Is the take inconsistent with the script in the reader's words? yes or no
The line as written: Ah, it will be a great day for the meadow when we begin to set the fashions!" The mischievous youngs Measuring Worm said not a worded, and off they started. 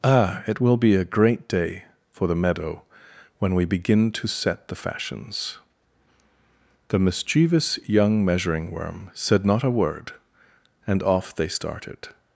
yes